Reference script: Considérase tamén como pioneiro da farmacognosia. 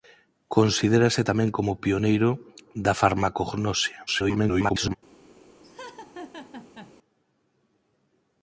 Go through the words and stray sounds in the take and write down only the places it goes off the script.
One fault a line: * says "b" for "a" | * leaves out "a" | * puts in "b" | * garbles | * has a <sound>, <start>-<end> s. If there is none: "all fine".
* garbles
* has a laugh, 5.6-6.9 s